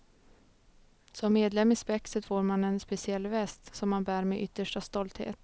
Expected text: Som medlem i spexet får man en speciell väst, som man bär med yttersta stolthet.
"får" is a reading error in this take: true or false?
false